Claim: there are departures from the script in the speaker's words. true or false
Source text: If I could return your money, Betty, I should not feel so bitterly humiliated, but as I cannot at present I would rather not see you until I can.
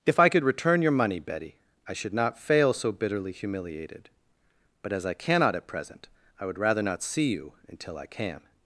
true